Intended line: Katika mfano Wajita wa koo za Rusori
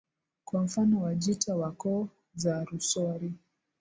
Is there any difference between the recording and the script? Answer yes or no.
yes